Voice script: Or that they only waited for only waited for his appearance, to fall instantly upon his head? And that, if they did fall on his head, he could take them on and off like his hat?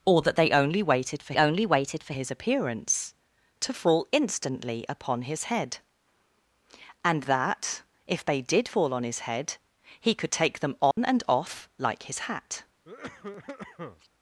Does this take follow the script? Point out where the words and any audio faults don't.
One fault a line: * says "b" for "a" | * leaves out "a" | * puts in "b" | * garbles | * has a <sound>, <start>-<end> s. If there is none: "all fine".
* has a dropout, 10.9-11.0 s
* has a cough, 12.8-14.1 s